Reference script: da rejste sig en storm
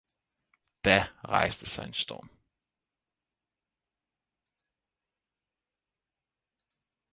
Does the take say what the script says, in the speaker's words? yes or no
yes